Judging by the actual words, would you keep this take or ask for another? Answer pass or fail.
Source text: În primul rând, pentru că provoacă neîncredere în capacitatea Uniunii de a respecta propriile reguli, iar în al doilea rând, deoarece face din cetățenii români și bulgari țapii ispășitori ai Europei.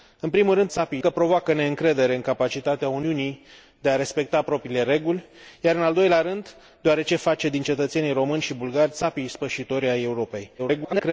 fail